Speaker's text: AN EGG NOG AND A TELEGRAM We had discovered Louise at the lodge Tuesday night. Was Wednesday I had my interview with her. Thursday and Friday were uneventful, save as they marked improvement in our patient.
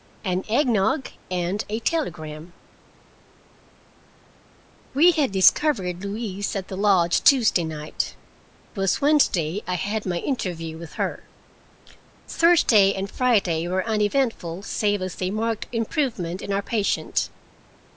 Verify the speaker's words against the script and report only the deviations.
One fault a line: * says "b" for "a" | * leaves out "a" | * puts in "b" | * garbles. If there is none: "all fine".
all fine